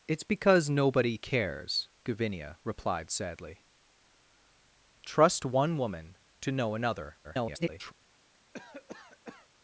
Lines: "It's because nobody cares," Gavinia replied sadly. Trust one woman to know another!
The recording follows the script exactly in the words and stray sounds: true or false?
false